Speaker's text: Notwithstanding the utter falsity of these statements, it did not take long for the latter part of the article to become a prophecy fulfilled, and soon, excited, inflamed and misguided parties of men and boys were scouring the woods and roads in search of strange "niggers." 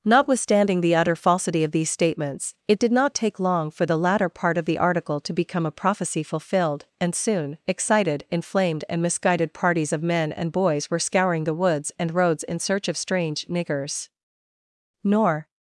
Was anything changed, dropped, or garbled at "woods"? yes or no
no